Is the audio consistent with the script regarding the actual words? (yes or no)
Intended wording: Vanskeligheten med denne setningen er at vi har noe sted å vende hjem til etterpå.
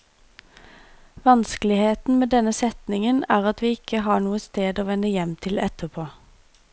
no